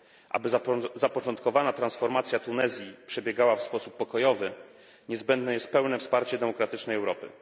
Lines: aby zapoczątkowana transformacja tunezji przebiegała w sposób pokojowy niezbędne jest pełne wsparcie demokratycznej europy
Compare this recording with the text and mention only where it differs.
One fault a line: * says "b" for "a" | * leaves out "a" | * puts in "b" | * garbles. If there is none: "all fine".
all fine